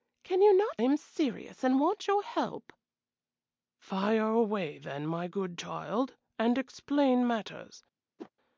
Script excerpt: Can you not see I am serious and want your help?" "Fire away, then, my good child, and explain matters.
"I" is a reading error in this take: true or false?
true